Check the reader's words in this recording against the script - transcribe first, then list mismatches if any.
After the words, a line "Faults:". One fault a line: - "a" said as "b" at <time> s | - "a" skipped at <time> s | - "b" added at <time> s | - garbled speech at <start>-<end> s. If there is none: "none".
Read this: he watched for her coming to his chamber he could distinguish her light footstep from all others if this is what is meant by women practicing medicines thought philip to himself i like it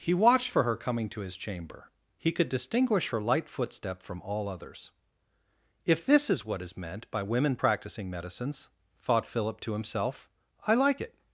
he watched for her coming to his chamber he could distinguish her light footstep from all others if this is what is meant by women practicing medicines thought philip to himself i like it
Faults:
none